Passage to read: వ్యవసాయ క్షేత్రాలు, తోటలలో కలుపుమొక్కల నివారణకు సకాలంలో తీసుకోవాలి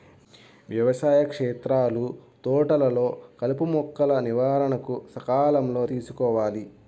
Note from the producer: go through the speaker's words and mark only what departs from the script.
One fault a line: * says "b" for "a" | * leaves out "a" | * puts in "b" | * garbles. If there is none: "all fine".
all fine